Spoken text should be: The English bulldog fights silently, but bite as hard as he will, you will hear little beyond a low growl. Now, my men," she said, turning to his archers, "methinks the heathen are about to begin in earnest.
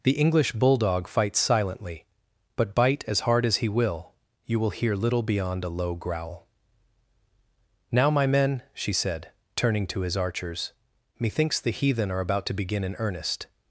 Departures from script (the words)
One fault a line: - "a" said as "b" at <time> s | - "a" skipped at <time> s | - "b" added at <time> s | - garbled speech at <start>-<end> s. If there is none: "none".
none